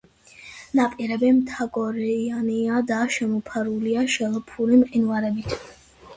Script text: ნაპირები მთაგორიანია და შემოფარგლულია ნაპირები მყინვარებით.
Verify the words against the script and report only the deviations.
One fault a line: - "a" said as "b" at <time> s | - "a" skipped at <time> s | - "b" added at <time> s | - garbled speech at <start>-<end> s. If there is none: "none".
- "ნაპირები" said as "შელფური" at 4.1 s